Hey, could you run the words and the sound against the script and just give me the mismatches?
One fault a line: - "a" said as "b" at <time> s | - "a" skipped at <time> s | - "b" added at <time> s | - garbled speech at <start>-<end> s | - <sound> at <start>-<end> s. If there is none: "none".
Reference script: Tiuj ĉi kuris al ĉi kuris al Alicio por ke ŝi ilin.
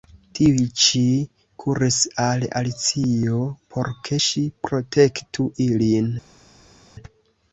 - "ĉi kuris al" skipped at 2.4 s
- "protektu" added at 4.7 s